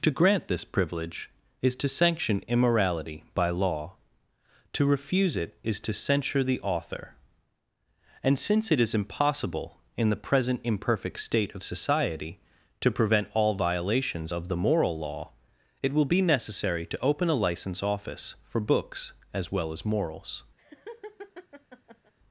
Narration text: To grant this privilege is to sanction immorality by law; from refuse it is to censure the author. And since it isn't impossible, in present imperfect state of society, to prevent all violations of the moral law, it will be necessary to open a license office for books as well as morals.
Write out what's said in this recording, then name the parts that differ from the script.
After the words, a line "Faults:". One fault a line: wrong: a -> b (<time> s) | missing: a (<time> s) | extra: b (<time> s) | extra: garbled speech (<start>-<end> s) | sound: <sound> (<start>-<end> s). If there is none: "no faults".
To grant this privilege is to sanction immorality by law; to refuse it is to censure the author. And since it is impossible, in the present imperfect state of society, to prevent all violations of the moral law, it will be necessary to open a license office for books as well as morals.
Faults:
wrong: from -> to (4.7 s)
wrong: isn't -> is (8.8 s)
extra: the (10.1 s)
sound: laugh (20.6-22.1 s)